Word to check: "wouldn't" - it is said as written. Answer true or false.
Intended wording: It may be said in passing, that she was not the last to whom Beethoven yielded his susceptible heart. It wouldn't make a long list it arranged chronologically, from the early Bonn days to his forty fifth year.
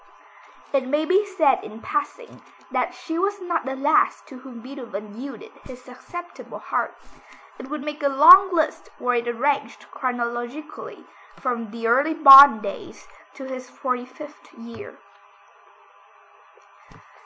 false